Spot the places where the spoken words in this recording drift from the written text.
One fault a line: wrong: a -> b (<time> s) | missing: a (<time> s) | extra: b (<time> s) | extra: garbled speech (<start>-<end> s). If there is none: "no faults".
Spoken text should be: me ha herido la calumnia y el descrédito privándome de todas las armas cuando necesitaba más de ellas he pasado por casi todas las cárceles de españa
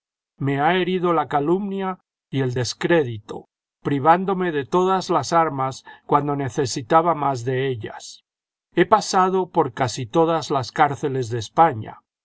no faults